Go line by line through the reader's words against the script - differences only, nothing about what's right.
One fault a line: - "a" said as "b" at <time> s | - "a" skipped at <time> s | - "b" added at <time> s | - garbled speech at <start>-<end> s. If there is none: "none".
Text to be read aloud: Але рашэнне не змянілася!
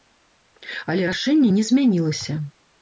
none